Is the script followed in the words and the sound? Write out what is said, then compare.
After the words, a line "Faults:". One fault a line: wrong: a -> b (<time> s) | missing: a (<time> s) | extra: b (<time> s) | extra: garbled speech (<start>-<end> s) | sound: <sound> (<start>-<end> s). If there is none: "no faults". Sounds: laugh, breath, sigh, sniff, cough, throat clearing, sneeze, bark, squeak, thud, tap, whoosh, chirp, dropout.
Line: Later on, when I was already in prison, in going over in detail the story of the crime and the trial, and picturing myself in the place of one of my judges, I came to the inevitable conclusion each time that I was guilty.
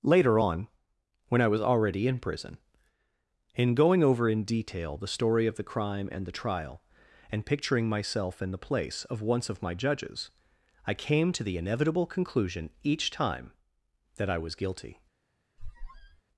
Later on, when I was already in prison, in going over in detail the story of the crime and the trial, and picturing myself in the place of once of my judges, I came to the inevitable conclusion each time that I was guilty.
Faults:
wrong: one -> once (9.2 s)
sound: squeak (15.6-16.2 s)